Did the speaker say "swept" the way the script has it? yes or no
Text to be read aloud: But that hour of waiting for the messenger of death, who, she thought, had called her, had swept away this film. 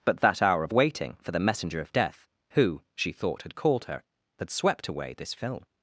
yes